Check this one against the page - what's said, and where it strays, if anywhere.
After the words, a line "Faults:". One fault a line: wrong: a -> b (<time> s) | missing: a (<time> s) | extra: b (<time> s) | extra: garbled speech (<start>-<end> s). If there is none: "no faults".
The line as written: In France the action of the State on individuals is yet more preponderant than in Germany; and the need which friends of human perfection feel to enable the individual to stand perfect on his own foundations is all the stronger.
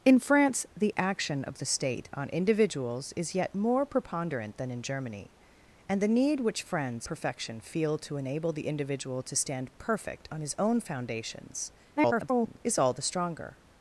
In France the action of the State on individuals is yet more preponderant than in Germany; and the need which friends perfection feel to enable the individual to stand perfect on his own foundations [garbled] is all the stronger.
Faults:
missing: of human (7.1 s)
extra: garbled speech (12.0-12.6 s)